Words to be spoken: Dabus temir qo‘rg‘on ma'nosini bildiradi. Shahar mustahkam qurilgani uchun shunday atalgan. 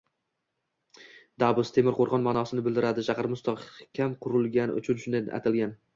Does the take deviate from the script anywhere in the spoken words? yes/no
no